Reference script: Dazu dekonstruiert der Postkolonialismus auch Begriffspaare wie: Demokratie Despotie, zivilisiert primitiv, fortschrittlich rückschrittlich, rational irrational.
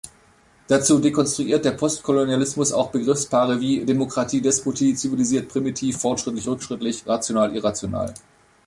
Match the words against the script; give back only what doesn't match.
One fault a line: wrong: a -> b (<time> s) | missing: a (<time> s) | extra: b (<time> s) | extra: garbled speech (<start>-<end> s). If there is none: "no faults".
no faults